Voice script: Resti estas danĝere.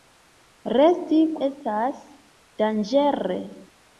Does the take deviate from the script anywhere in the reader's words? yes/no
no